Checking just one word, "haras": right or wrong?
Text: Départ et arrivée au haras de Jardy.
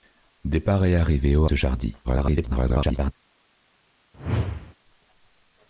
wrong